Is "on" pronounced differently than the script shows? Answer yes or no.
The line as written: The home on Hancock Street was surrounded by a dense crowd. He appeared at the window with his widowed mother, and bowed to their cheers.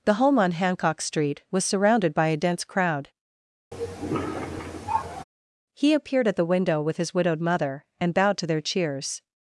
no